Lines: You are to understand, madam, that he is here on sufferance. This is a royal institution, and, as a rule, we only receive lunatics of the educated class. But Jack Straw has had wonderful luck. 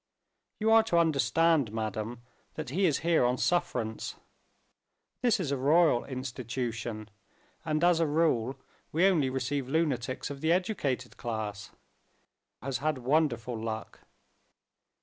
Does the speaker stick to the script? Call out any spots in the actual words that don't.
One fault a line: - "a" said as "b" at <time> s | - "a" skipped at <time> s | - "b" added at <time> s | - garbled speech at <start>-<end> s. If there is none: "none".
- "But Jack Straw" skipped at 11.7 s